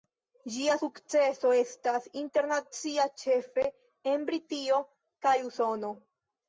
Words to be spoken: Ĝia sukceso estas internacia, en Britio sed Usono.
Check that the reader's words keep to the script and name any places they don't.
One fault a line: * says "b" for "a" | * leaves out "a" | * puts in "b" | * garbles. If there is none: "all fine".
* puts in "ĉefe"
* says "kaj" for "sed"